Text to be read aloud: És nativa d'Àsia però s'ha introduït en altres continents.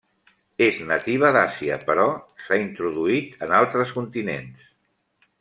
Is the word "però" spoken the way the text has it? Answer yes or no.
yes